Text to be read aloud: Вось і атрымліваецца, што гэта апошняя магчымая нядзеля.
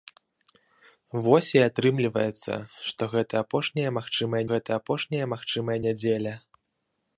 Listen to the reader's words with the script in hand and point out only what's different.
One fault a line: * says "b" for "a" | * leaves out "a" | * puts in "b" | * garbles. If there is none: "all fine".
* puts in "гэта апошняя магчымая"